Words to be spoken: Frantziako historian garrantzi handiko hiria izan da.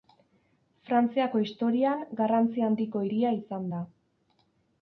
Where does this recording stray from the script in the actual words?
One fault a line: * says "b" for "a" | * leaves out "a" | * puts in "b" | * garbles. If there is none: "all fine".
all fine